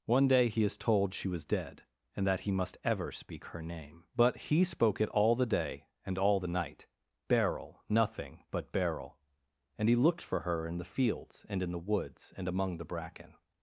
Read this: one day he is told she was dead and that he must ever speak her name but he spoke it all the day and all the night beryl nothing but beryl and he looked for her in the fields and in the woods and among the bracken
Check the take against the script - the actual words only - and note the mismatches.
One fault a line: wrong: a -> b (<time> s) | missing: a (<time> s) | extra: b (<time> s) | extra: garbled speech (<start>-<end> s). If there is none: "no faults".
no faults